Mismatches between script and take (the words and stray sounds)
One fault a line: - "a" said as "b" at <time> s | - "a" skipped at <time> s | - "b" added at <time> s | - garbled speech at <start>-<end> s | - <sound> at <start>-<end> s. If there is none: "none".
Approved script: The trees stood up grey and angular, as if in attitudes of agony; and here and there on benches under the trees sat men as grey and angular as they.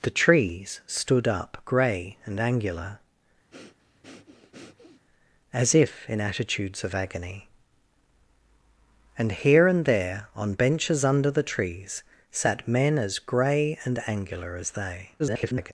- breath at 3.5-5.1 s
- garbled speech at 15.2-15.7 s